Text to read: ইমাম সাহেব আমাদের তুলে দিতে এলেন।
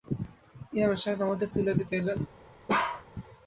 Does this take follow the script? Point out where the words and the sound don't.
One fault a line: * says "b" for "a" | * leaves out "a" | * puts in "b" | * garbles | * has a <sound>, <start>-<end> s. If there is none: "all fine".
* has a bark, 2.7-3.0 s